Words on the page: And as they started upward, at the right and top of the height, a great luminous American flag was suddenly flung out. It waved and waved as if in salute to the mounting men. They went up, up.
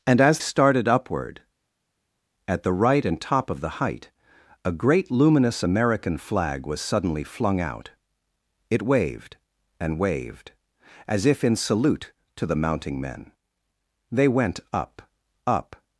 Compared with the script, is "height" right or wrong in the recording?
right